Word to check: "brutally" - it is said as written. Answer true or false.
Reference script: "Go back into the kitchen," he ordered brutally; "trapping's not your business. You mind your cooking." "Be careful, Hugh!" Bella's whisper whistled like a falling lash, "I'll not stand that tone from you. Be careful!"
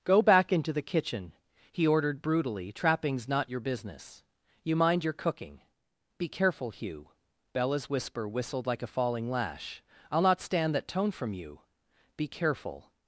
true